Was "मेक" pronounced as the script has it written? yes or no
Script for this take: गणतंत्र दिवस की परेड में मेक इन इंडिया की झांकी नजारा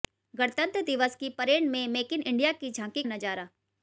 yes